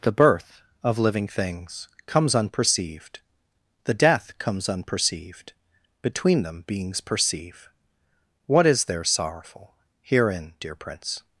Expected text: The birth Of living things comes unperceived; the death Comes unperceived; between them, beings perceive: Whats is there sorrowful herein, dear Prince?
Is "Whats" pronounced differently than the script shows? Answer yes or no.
yes